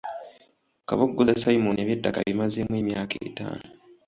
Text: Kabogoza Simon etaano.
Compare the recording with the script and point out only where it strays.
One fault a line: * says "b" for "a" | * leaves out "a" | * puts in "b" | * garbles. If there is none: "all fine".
* puts in "eby'ettaka abimazeemu emyaka"